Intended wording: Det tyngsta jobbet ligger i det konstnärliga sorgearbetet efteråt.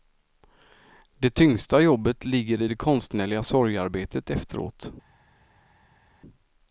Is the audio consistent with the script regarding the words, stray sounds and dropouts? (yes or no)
yes